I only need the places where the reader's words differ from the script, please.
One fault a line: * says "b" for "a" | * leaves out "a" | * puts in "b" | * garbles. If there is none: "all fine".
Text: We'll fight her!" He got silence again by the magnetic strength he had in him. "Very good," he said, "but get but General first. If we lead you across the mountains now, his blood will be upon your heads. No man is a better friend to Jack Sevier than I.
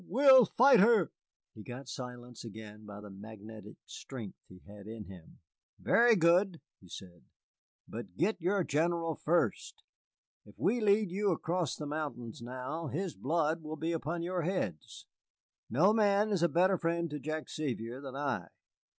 * says "your" for "but"